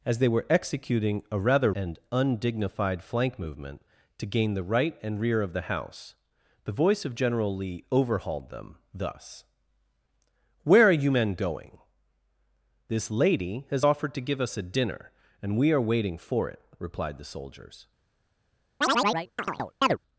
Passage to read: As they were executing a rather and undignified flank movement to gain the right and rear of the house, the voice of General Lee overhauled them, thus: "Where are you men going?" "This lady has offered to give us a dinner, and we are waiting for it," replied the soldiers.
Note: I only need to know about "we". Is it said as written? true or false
true